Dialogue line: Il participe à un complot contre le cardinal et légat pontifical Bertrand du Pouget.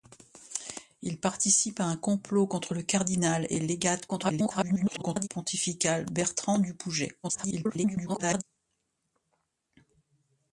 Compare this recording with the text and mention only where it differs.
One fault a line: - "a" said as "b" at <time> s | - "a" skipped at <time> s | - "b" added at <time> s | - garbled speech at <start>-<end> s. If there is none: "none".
- garbled speech at 4.1-5.3 s
- garbled speech at 7.2-8.4 s